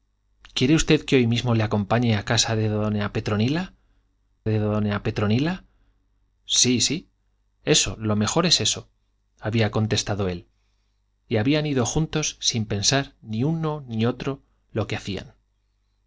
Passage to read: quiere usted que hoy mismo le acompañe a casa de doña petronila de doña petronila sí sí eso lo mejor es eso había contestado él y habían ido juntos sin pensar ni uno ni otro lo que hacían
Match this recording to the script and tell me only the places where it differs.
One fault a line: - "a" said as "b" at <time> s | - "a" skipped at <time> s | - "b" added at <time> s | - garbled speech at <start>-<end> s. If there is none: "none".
none